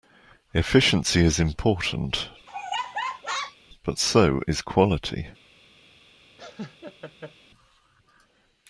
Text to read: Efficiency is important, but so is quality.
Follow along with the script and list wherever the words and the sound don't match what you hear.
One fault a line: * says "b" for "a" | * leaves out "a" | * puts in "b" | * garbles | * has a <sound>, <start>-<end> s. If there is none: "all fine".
* has a laugh, 2.5-3.6 s
* has a laugh, 6.4-7.3 s